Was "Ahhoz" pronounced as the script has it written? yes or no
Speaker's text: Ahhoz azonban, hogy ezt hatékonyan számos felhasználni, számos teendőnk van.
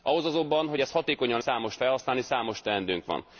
yes